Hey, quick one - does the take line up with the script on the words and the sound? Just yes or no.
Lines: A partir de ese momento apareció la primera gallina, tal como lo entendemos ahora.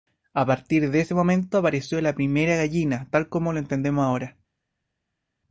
yes